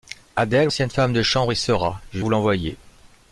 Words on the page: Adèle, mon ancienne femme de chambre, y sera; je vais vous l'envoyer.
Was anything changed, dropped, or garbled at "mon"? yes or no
yes